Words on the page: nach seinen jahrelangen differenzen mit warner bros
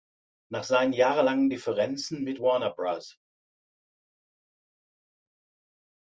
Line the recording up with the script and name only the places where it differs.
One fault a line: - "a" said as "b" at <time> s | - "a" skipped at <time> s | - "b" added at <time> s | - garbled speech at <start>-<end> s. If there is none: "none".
none